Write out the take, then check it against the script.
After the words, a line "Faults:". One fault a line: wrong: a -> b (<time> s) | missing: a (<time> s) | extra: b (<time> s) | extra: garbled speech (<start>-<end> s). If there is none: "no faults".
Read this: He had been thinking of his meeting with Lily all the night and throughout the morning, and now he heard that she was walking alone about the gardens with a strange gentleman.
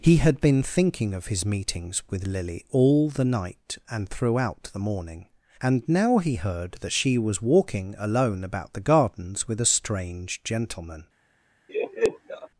He had been thinking of his meetings with Lily all the night and throughout the morning, and now he heard that she was walking alone about the gardens with a strange gentleman.
Faults:
wrong: meeting -> meetings (1.4 s)